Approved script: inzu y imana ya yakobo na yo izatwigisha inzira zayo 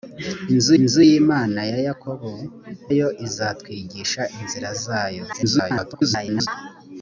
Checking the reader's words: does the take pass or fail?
fail